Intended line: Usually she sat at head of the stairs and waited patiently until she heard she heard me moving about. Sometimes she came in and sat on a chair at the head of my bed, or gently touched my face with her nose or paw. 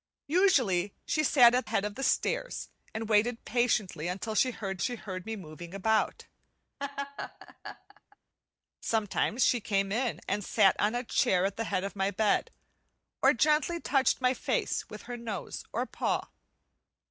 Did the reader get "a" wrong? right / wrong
right